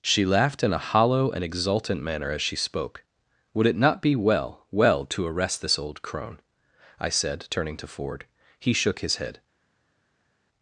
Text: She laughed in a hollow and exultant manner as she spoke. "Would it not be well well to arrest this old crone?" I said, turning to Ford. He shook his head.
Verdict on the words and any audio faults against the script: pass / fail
pass